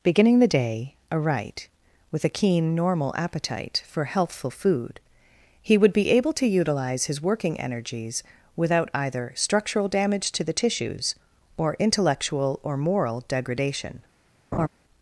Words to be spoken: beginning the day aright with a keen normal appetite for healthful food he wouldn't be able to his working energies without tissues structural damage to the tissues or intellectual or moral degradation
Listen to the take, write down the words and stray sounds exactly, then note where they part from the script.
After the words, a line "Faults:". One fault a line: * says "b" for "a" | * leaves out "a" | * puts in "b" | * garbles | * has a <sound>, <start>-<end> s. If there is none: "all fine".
beginning the day aright with a keen normal appetite for healthful food he would be able to utilize his working energies without either structural damage to the tissues or intellectual or moral degradation
Faults:
* says "would" for "wouldn't"
* puts in "utilize"
* says "either" for "tissues"
* has a laugh, 14.5-14.7 s